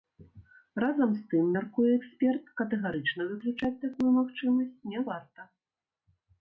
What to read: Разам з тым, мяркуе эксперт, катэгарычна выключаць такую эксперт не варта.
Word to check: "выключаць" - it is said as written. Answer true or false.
true